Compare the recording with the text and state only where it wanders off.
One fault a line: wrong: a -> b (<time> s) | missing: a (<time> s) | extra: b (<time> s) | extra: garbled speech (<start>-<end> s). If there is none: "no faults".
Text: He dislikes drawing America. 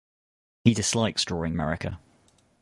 no faults